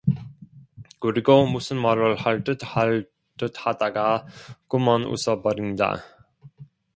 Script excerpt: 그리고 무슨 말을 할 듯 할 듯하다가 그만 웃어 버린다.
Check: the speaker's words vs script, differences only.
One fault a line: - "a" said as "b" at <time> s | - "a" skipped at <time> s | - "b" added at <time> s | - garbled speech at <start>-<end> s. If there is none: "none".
none